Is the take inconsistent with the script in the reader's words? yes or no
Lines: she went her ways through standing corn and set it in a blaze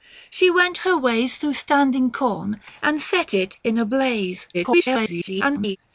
yes